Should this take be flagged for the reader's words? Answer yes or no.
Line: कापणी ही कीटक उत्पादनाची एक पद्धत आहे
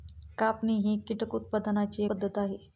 yes